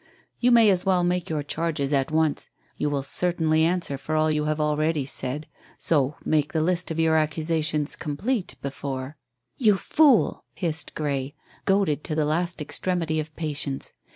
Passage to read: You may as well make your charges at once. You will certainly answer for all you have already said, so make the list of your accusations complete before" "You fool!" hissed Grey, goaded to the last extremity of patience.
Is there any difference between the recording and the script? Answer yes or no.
no